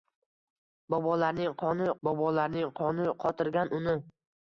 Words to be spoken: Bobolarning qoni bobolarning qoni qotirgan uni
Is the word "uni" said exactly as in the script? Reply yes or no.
yes